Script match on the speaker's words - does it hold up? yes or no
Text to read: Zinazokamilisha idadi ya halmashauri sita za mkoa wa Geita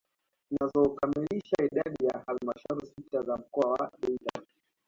yes